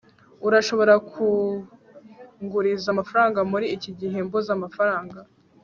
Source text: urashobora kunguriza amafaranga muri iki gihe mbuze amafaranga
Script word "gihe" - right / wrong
right